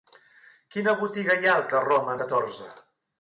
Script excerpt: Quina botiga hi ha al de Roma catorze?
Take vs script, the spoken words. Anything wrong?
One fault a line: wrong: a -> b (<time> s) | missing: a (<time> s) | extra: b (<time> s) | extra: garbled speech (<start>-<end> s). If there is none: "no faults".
no faults